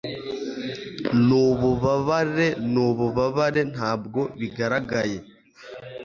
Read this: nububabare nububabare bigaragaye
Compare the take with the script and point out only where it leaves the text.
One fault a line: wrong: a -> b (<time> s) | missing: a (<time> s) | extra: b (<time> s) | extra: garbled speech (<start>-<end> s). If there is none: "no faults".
extra: ntabwo (3.7 s)